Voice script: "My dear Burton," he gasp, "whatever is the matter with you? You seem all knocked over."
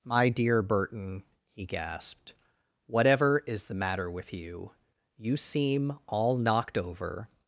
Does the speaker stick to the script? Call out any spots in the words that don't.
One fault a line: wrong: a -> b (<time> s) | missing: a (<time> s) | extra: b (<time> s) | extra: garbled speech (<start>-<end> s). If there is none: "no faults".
wrong: gasp -> gasped (1.6 s)